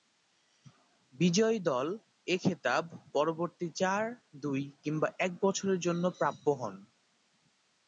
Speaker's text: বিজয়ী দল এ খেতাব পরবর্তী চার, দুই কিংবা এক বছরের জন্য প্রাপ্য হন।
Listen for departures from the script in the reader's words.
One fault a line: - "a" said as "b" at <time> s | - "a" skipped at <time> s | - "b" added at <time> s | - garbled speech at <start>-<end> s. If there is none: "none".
none